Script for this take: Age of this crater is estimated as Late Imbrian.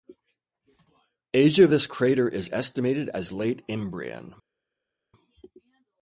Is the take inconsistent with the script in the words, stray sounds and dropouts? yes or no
no